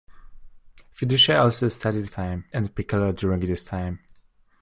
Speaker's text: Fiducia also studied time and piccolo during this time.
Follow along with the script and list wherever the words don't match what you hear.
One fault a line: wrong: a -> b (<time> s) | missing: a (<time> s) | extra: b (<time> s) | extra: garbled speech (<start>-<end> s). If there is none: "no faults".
no faults